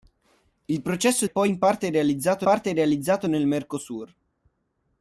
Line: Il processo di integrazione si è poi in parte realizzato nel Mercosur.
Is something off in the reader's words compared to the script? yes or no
yes